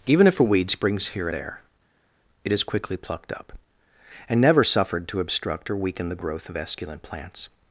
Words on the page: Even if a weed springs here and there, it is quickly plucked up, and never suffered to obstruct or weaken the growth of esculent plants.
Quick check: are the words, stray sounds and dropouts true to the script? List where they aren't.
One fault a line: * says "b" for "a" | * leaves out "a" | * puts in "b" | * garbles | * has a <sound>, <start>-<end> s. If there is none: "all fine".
* leaves out "and"